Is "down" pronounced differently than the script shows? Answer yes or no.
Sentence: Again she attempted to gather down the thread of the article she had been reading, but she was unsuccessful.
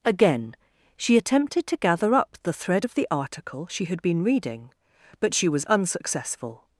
yes